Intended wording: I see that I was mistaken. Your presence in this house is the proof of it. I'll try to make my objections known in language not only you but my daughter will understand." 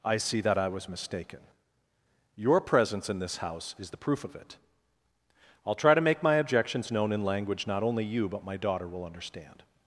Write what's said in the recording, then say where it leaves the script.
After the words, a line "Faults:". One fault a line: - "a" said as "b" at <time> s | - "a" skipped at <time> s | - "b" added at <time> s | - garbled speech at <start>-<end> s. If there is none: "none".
I see that I was mistaken. Your presence in this house is the proof of it. I'll try to make my objections known in language not only you but my daughter will understand."
Faults:
none